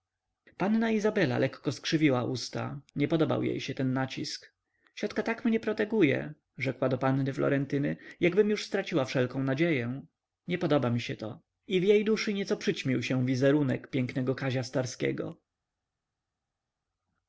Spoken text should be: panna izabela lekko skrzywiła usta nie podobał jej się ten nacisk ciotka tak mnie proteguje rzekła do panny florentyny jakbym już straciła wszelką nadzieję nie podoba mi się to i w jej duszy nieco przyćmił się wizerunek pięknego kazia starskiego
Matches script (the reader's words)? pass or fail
pass